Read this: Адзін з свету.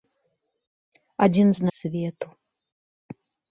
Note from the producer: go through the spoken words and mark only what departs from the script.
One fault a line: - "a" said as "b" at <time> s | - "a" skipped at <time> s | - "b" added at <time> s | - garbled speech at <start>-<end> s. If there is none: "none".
none